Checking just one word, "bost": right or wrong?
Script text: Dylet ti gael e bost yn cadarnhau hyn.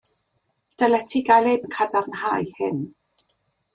wrong